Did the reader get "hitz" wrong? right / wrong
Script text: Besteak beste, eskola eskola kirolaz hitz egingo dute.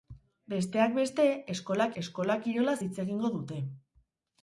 right